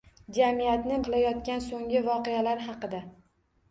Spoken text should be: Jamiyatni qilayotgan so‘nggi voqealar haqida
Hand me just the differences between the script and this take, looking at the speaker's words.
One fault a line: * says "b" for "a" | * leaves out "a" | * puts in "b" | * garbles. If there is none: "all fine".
all fine